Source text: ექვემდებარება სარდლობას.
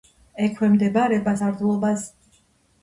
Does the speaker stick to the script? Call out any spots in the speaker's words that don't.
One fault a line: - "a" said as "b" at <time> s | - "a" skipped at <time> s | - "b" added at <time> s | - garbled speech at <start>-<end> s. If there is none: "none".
none